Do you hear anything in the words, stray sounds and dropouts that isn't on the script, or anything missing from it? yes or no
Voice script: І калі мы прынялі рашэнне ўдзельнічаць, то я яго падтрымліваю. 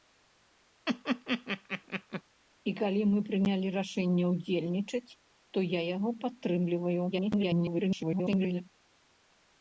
yes